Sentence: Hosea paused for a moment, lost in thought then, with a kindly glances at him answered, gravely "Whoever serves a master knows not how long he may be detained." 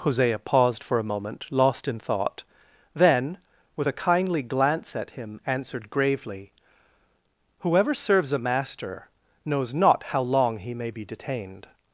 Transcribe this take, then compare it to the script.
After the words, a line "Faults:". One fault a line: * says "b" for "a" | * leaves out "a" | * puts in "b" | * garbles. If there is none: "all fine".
Hosea paused for a moment, lost in thought then, with a kindly glance at him answered, gravely "Whoever serves a master knows not how long he may be detained."
Faults:
* says "glance" for "glances"